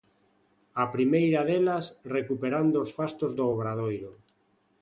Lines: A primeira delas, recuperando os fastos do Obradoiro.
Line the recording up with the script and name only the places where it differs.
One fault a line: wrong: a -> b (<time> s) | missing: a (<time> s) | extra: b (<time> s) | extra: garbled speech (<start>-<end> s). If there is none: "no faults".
no faults